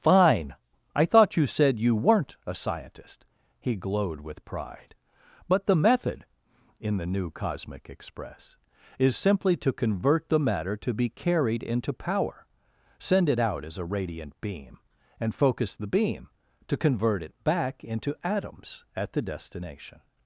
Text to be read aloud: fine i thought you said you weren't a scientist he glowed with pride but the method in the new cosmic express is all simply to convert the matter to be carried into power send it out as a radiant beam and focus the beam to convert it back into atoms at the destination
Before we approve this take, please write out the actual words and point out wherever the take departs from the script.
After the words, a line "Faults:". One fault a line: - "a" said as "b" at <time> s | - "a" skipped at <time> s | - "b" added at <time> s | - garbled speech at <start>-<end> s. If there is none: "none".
fine i thought you said you weren't a scientist he glowed with pride but the method in the new cosmic express is simply to convert the matter to be carried into power send it out as a radiant beam and focus the beam to convert it back into atoms at the destination
Faults:
- "all" skipped at 9.2 s